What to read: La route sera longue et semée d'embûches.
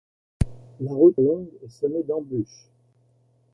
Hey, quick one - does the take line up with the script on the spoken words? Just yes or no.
no